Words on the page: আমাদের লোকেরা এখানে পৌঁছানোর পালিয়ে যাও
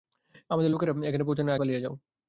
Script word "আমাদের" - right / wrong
right